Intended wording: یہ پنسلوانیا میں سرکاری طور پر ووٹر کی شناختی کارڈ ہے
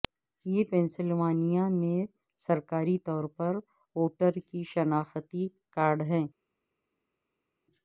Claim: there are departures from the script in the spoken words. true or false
false